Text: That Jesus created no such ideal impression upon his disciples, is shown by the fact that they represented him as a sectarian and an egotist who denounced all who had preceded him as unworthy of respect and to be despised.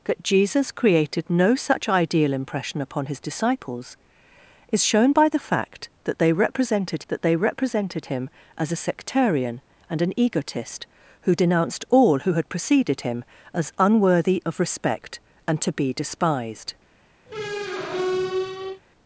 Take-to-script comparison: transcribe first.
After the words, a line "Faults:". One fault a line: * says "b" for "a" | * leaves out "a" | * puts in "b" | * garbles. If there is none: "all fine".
That Jesus created no such ideal impression upon his disciples, is shown by the fact that they represented that they represented him as a sectarian and an egotist who denounced all who had preceded him as unworthy of respect and to be despised.
Faults:
* puts in "that they represented"